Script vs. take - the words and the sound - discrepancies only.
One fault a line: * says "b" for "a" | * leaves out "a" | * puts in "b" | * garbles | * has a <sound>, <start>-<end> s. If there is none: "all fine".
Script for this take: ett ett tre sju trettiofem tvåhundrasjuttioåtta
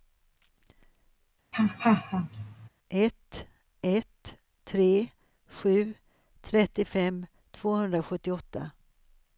* has a laugh, 1.5-2.7 s